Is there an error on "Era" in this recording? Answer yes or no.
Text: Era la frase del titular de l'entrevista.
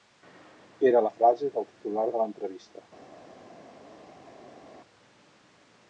no